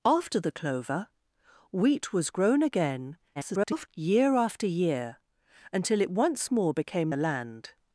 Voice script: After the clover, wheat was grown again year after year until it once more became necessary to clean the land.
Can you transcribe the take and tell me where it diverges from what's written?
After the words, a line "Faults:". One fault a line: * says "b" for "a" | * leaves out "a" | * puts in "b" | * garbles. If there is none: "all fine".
After the clover, wheat was grown again [garbled] year after year until it once more became the land.
Faults:
* garbles
* leaves out "necessary to clean"